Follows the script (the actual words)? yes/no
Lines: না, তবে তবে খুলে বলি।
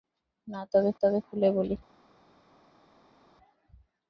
yes